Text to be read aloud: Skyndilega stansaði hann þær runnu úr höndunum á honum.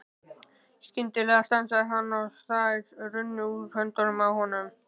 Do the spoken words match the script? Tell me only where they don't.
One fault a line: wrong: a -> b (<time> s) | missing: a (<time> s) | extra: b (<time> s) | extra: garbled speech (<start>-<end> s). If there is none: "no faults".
extra: og (2.2 s)